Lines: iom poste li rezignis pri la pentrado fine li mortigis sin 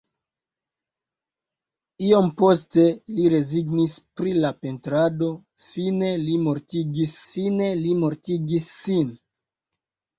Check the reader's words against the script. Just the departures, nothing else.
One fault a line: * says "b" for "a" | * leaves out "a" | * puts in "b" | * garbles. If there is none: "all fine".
* puts in "fine li mortigis"